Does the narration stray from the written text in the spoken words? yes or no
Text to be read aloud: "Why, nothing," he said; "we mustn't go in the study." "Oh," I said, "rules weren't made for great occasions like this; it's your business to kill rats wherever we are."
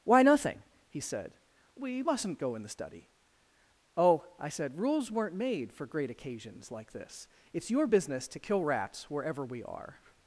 no